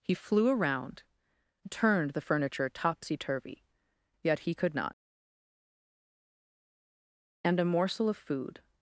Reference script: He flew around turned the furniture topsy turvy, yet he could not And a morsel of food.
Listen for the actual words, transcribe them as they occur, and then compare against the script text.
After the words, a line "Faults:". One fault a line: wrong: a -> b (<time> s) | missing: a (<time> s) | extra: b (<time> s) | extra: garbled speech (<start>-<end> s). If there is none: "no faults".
He flew around turned the furniture topsy turvy, yet he could not And a morsel of food.
Faults:
no faults